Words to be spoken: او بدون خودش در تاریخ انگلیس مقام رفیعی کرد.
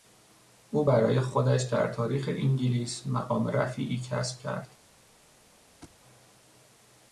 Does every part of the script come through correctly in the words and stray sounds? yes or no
no